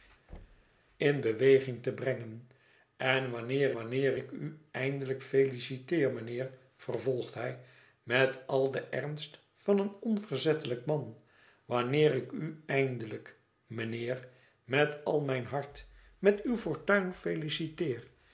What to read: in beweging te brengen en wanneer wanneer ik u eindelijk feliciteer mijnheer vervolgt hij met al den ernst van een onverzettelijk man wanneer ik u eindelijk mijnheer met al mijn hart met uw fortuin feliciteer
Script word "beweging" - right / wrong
right